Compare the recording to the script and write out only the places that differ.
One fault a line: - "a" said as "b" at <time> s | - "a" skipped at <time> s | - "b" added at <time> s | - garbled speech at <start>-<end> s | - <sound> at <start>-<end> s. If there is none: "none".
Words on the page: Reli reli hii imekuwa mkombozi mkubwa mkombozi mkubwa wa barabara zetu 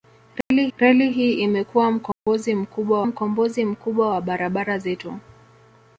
- dropout at 0.4-0.5 s
- dropout at 2.1-2.3 s